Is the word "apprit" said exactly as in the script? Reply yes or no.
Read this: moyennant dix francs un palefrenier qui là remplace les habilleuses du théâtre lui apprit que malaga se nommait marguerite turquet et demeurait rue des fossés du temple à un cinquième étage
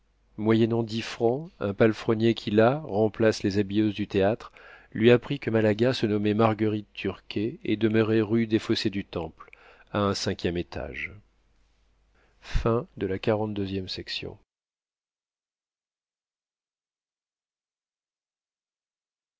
yes